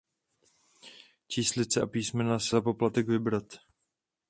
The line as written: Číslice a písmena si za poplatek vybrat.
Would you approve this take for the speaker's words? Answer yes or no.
yes